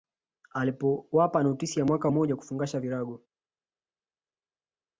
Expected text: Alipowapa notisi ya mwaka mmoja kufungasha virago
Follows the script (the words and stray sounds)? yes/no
yes